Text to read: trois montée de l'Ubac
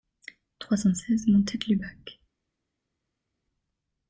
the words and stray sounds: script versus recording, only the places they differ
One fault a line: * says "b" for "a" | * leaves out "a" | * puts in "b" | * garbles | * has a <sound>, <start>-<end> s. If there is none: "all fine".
* puts in "cent seize"